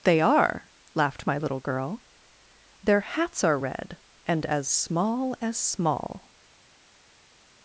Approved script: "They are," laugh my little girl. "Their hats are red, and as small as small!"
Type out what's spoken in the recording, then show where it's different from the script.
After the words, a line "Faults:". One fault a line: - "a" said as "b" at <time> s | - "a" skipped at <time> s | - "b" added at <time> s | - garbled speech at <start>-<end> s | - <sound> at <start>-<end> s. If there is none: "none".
"They are," laughed my little girl. "Their hats are red, and as small as small!"
Faults:
- "laugh" said as "laughed" at 0.9 s